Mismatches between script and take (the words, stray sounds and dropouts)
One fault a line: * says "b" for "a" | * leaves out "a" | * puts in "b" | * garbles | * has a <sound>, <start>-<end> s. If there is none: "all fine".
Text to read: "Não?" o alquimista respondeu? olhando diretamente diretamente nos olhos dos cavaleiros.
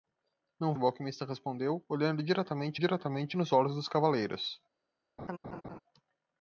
* has a laugh, 5.2-5.8 s